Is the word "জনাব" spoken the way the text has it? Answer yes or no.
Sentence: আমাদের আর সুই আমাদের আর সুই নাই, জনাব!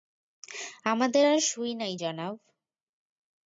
yes